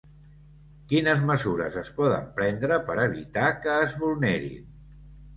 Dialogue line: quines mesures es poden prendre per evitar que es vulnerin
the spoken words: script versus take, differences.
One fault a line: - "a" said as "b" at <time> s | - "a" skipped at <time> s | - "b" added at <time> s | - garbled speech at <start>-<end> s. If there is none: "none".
none